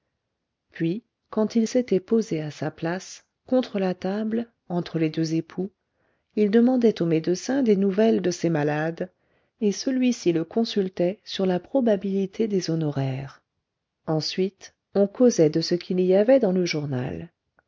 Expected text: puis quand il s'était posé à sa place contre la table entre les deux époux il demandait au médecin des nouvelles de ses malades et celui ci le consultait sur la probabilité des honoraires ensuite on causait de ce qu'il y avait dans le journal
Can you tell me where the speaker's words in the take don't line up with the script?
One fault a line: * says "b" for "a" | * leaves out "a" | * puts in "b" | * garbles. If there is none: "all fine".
all fine